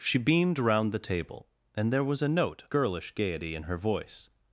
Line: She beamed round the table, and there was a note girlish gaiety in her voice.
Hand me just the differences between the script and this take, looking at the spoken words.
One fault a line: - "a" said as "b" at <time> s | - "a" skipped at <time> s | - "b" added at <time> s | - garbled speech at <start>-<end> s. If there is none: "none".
none